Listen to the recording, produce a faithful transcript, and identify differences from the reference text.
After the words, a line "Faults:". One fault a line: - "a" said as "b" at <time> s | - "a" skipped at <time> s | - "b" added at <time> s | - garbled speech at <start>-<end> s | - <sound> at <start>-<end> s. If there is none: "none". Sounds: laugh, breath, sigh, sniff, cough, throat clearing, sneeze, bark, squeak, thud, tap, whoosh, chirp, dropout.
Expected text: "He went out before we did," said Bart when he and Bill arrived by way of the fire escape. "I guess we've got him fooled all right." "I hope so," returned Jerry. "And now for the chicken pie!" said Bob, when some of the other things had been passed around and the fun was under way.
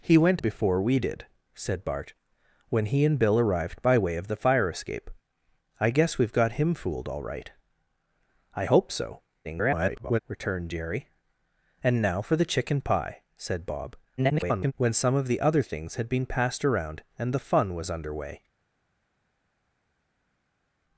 "He went before we did," said Bart when he and Bill arrived by way of the fire escape. "I guess we've got him fooled all right." "I hope so," [garbled] returned Jerry. "And now for the chicken pie!" said Bob, [garbled] when some of the other things had been passed around and the fun was under way.
Faults:
- "out" skipped at 0.4 s
- garbled speech at 9.4-10.2 s
- garbled speech at 14.2-14.7 s